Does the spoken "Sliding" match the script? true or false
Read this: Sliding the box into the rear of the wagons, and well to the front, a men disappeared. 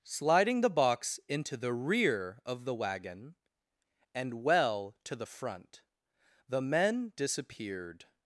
true